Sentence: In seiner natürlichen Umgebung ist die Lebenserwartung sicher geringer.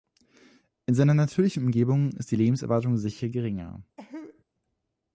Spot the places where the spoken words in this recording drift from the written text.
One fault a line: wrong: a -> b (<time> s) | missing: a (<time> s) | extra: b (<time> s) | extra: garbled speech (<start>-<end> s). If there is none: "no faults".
no faults